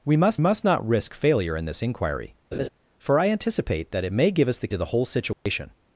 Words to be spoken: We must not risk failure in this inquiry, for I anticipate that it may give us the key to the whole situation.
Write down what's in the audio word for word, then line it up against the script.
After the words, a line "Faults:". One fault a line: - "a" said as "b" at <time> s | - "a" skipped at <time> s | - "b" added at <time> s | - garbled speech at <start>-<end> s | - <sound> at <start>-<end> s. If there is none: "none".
We must must not risk failure in this inquiry, for I anticipate that it may give us the to the whole situation.
Faults:
- "must" added at 0.4 s
- laugh at 2.5-2.7 s
- "key" skipped at 4.7 s
- dropout at 5.3-5.5 s